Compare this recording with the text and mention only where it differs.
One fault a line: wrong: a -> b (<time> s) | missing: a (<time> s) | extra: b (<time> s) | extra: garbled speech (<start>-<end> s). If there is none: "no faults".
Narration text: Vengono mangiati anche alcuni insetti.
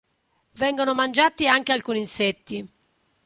no faults